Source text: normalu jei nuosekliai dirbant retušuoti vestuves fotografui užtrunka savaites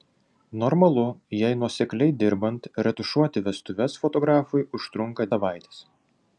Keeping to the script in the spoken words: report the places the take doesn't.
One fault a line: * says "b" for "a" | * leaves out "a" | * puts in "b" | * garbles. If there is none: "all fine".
all fine